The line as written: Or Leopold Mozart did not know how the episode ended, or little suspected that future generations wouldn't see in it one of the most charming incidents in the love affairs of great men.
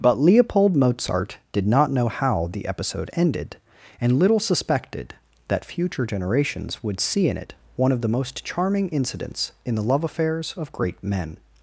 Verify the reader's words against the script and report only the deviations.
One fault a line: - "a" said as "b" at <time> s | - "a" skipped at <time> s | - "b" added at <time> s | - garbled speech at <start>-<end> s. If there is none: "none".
- "Or" said as "But" at 0.0 s
- "or" said as "and" at 4.0 s
- "wouldn't" said as "would" at 6.8 s